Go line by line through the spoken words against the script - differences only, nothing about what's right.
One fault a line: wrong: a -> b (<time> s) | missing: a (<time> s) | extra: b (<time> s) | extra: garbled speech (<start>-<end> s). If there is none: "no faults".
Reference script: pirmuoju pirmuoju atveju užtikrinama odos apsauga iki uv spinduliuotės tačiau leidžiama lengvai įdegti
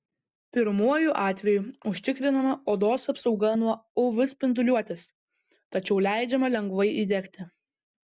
missing: pirmuoju (1.1 s)
wrong: iki -> nuo (3.6 s)